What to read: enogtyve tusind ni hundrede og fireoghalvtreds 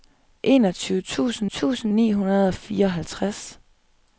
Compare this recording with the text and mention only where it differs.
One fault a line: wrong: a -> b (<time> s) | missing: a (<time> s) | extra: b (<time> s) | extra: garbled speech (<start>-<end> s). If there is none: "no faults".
extra: tusind (1.5 s)